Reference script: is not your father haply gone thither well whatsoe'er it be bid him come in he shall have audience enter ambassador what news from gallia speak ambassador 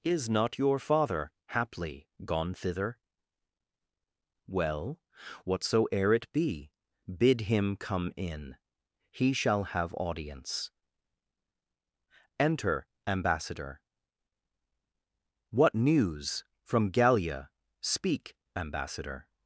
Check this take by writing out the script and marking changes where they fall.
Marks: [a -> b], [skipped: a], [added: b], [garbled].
is not your father haply gone thither well whatsoe'er it be bid him come in he shall have audience enter ambassador what news from gallia speak ambassador